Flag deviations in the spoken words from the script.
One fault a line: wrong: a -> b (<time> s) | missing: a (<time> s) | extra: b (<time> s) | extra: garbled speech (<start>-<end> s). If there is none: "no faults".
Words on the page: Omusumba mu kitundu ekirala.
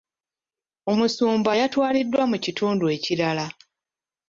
extra: yatwaliddwa (1.6 s)